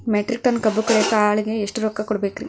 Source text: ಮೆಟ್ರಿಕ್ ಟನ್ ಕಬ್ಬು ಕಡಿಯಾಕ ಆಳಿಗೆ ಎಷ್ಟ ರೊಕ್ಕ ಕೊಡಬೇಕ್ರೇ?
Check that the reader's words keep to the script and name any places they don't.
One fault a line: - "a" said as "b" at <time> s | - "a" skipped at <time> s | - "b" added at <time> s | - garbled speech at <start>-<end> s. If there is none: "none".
none